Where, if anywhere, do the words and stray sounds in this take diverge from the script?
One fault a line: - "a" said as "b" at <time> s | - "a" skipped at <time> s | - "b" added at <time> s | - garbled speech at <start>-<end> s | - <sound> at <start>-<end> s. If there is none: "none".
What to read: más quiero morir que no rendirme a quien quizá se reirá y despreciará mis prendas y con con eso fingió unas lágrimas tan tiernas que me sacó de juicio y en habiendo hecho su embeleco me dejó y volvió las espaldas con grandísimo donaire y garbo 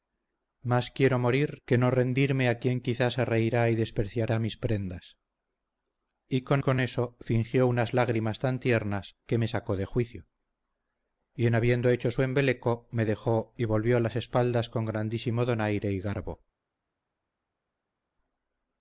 none